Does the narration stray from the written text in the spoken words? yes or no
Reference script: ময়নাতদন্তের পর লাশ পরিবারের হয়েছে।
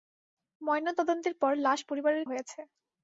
no